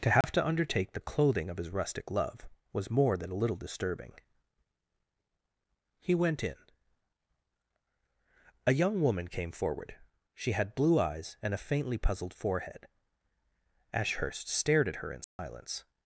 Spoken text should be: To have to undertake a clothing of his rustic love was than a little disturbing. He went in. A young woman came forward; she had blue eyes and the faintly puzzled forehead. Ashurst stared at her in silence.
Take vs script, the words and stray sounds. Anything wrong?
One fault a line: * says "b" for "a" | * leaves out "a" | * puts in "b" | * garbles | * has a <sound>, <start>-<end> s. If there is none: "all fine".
* has a dropout, 0.2-0.2 s
* says "the" for "a"
* puts in "more"
* says "a" for "the"
* has a dropout, 15.2-15.4 s